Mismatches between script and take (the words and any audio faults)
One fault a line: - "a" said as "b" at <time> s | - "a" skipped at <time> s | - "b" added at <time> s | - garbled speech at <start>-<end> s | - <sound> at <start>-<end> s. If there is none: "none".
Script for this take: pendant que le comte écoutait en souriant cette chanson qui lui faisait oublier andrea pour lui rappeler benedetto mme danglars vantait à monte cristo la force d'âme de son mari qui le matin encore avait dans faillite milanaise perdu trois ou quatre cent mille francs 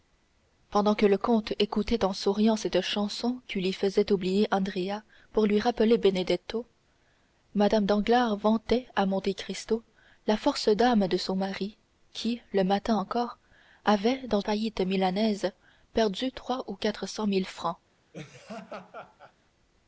- laugh at 18.1-19.3 s